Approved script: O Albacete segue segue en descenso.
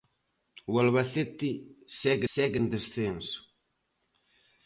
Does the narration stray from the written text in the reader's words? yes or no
no